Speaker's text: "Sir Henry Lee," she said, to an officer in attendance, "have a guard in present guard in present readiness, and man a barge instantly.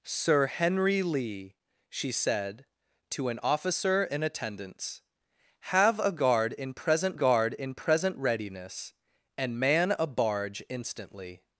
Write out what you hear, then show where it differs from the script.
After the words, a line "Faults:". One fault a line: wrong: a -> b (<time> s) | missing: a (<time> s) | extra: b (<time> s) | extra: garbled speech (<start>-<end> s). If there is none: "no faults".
"Sir Henry Lee," she said, to an officer in attendance, "have a guard in present guard in present readiness, and man a barge instantly.
Faults:
no faults